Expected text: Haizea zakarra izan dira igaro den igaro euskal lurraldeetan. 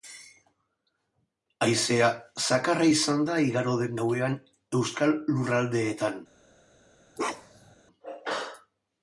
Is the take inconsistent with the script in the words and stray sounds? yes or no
yes